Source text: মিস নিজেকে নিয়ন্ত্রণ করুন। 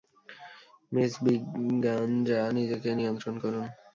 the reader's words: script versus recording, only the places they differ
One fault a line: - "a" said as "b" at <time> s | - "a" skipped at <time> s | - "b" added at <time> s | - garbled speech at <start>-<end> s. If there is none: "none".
- "ব্রিগাঞ্জা" added at 1.2 s